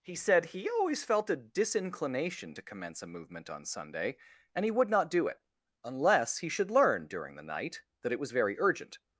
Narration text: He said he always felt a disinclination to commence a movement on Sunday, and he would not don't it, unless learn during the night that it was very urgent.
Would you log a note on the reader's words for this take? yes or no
yes